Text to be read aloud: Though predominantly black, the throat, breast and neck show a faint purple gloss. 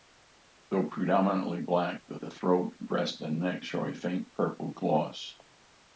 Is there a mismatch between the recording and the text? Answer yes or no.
yes